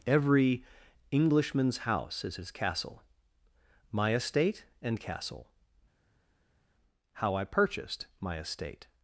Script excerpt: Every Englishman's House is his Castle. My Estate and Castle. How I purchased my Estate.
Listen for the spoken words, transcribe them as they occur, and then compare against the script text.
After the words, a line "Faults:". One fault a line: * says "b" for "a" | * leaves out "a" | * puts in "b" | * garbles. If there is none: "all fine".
Every Englishman's House is his Castle. My Estate and Castle. How I purchased my Estate.
Faults:
all fine